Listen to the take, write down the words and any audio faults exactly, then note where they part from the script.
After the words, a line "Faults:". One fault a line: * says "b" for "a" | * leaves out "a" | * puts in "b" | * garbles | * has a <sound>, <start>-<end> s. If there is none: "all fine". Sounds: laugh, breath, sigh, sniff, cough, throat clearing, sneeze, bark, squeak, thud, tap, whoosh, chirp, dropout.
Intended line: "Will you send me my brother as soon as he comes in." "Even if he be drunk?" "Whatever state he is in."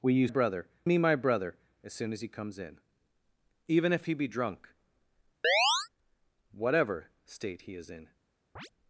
"Will you brother me my brother as soon as he comes in." "Even if he be drunk?" "Whatever state he is in."
Faults:
* says "brother" for "send"
* has a chirp, 5.4-5.9 s
* has a chirp, 8.6-8.7 s